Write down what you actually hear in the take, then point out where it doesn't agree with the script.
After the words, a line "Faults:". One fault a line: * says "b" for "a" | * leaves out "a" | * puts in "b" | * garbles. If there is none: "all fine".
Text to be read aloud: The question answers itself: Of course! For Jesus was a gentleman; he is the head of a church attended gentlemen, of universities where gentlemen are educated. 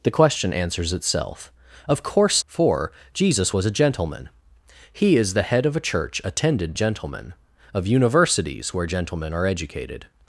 The question answers itself: Of course! For Jesus was a gentleman; he is the head of a church attended gentlemen, of universities where gentlemen are educated.
Faults:
all fine